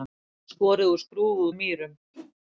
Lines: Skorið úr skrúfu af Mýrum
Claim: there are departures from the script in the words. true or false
false